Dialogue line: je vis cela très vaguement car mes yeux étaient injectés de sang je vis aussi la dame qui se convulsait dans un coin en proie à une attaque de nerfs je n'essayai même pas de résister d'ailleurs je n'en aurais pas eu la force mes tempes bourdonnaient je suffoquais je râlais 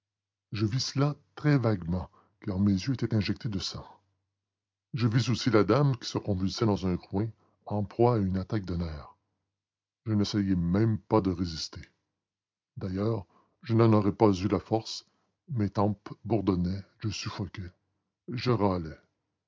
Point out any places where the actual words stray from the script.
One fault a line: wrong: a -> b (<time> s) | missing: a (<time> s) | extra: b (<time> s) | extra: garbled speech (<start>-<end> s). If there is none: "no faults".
no faults